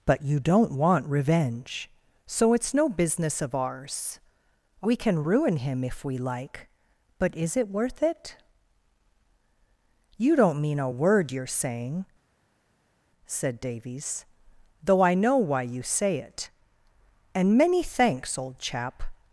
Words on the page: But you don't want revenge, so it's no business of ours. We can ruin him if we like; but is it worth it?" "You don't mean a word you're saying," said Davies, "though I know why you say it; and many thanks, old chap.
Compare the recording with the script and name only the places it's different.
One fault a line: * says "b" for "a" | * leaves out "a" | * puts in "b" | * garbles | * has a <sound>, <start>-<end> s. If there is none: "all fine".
all fine